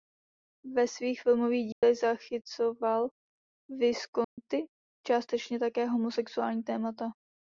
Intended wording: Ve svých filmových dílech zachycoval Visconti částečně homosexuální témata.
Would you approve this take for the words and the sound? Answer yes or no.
no